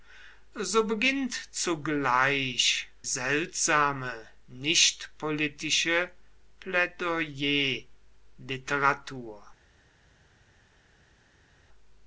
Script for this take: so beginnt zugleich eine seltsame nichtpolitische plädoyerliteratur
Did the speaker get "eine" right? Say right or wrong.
wrong